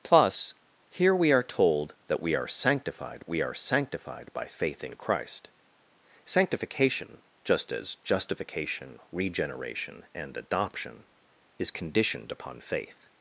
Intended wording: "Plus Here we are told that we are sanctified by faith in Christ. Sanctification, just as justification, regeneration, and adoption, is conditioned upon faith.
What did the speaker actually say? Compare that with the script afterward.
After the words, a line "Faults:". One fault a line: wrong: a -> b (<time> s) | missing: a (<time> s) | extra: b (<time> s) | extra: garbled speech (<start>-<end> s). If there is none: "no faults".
"Plus Here we are told that we are sanctified we are sanctified by faith in Christ. Sanctification, just as justification, regeneration, and adoption, is conditioned upon faith.
Faults:
extra: we are sanctified (3.3 s)